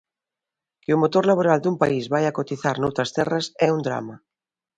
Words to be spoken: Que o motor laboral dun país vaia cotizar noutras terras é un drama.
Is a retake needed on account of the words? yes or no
no